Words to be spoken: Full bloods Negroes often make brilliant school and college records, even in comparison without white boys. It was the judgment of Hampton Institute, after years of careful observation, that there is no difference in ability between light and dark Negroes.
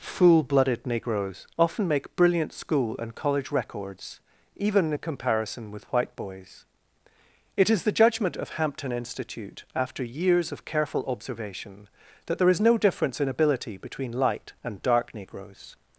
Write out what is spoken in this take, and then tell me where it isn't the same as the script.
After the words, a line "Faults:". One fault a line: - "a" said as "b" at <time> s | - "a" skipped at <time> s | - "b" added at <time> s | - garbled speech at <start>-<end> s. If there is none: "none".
Full blooded Negroes often make brilliant school and college records, even in comparison with white boys. It is the judgment of Hampton Institute, after years of careful observation, that there is no difference in ability between light and dark Negroes.
Faults:
- "bloods" said as "blooded" at 0.4 s
- "without" said as "with" at 5.7 s
- "was" said as "is" at 7.7 s